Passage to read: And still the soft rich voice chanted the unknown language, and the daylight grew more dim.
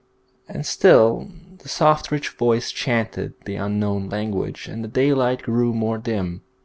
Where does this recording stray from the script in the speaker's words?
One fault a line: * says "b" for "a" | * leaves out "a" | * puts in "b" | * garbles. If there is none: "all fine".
all fine